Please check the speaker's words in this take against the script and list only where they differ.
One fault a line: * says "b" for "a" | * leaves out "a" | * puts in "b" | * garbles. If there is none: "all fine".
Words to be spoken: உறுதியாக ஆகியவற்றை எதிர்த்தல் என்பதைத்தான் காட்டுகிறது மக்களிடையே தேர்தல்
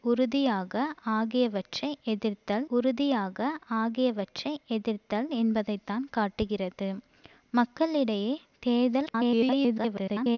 * puts in "உறுதியாக ஆகியவற்றை எதிர்த்தல்"
* garbles